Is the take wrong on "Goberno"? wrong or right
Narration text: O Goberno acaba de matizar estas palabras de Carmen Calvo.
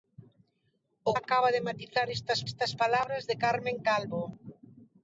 wrong